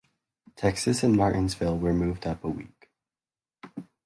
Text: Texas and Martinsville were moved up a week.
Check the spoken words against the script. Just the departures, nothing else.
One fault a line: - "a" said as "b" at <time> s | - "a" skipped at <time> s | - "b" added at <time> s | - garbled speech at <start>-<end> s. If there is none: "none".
none